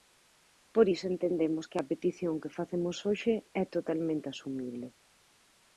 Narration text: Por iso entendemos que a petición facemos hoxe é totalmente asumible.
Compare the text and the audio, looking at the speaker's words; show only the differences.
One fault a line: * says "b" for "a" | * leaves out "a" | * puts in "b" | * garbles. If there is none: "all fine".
* puts in "que"